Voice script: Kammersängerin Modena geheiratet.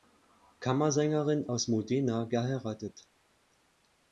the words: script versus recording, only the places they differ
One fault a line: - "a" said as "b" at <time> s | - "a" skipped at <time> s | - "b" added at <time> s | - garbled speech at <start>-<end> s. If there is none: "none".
- "aus" added at 1.5 s